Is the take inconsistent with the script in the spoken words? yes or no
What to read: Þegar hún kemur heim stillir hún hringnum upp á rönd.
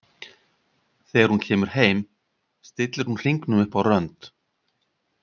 no